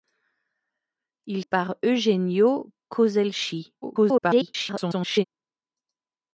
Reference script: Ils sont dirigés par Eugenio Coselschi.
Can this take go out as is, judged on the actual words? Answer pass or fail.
fail